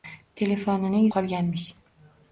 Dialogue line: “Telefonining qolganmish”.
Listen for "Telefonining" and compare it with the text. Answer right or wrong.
right